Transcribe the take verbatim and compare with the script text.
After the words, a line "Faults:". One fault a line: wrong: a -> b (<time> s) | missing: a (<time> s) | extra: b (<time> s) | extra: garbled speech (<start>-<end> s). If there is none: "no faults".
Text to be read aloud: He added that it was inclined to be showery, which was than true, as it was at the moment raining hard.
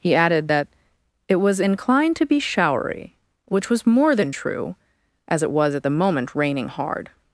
He added that it was inclined to be showery, which was more than true, as it was at the moment raining hard.
Faults:
extra: more (3.8 s)